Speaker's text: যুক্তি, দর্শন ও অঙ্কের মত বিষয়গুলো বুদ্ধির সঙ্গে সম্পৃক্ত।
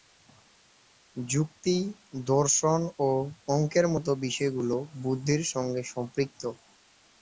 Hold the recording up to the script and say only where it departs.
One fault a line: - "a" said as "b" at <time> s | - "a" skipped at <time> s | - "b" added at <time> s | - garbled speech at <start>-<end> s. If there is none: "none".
none